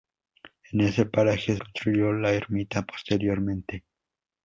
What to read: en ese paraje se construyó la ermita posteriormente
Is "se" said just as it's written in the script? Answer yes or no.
no